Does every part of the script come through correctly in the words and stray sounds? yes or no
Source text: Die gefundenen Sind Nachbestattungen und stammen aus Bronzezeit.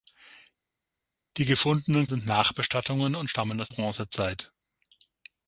yes